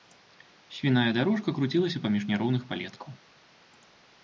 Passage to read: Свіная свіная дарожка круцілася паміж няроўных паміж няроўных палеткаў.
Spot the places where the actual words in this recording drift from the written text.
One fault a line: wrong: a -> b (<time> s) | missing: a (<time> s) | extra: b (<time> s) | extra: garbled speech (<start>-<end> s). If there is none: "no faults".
missing: свіная (1.1 s)
missing: паміж няроўных (2.7 s)